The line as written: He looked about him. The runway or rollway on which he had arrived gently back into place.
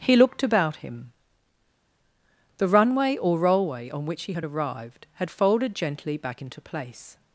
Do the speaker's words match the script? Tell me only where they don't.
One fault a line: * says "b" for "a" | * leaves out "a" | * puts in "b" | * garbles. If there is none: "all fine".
* puts in "had folded"